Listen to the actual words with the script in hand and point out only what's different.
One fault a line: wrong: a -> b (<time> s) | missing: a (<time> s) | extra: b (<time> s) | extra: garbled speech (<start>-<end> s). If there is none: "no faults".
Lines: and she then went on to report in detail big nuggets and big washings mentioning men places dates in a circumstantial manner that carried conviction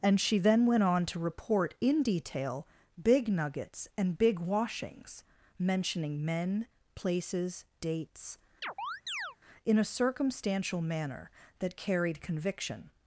no faults